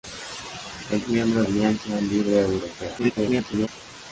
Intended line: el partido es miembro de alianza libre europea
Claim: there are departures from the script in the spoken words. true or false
true